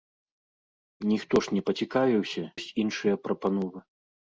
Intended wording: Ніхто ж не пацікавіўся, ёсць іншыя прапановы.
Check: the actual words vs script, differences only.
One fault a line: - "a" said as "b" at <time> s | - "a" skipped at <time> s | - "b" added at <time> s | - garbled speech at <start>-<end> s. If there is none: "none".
none